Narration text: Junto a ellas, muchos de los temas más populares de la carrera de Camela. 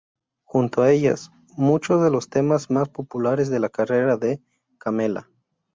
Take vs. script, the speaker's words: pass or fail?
pass